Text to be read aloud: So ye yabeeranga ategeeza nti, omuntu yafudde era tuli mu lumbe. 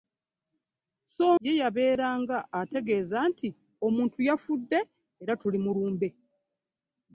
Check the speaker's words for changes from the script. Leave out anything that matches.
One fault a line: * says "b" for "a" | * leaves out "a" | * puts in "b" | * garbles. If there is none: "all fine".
all fine